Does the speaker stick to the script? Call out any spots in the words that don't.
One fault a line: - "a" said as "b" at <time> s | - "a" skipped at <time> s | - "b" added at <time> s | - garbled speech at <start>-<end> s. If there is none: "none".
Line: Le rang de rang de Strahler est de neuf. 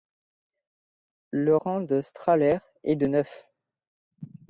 - "rang de" skipped at 2.0 s